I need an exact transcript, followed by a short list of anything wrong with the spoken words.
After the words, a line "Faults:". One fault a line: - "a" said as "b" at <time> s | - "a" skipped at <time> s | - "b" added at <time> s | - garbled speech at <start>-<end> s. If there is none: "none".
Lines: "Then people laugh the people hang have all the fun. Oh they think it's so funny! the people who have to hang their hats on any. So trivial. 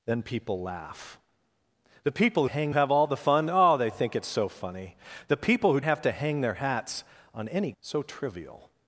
"Then people laugh the people hang have all the fun. Oh they think it's so funny! the people who have to hang their hats on any. So trivial.
Faults:
none